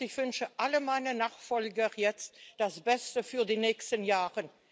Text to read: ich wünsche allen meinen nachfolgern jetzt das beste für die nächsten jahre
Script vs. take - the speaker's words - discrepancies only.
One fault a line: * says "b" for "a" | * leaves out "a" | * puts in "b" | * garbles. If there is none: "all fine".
all fine